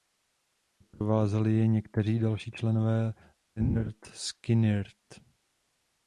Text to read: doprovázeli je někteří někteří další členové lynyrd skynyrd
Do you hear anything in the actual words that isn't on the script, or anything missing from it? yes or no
yes